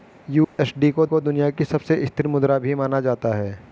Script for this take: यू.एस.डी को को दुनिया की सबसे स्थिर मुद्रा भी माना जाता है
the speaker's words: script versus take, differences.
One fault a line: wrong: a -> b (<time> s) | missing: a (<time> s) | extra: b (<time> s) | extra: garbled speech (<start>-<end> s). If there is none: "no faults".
no faults